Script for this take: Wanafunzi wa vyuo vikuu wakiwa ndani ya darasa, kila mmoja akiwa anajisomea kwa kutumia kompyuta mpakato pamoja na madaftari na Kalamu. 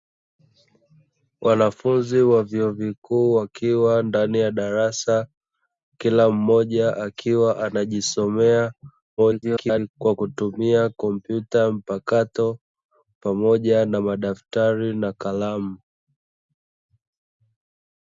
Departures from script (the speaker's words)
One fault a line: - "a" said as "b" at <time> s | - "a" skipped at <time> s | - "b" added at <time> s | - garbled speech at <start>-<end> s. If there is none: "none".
- garbled speech at 9.2-9.9 s